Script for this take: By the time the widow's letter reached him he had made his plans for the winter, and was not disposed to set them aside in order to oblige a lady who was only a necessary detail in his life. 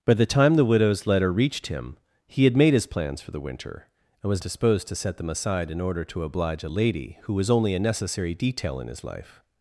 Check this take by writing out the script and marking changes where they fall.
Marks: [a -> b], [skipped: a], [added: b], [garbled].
By the time the widow's letter reached him he had made his plans for the winter, and was [skipped: not] disposed to set them aside in order to oblige a lady who was only a necessary detail in his life.